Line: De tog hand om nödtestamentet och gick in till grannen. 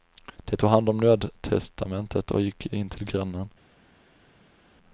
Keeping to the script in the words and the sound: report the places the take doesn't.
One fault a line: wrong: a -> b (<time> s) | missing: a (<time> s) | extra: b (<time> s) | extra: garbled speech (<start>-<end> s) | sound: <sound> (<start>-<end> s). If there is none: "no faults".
no faults